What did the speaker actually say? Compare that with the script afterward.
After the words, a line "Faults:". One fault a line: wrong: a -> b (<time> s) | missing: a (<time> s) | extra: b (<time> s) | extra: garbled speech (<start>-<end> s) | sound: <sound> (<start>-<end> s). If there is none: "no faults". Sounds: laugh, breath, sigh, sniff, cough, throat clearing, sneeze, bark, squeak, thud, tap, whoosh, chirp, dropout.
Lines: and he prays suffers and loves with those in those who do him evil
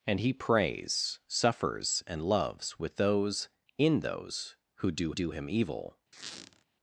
and he prays suffers and loves with those in those who do do him evil
Faults:
extra: do (5.1 s)
sound: squeak (6.1-6.6 s)